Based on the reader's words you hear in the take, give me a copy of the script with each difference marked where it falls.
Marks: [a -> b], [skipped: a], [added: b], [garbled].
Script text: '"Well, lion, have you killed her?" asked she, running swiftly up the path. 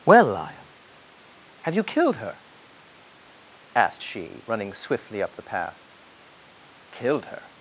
'"Well, lion, have you killed her?" asked she, running swiftly up the path. [added: Killed her]